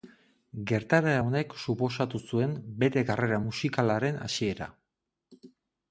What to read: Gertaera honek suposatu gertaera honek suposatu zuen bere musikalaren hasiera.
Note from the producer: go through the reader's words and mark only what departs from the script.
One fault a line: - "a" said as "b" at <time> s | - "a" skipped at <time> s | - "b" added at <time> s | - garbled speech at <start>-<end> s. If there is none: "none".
- "gertaera honek suposatu" skipped at 2.2 s
- "karrera" added at 3.1 s